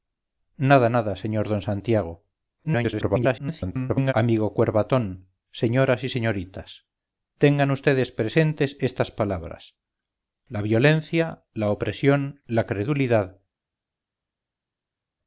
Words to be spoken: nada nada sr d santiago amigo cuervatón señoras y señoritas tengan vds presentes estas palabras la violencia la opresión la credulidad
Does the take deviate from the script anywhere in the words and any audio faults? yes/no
yes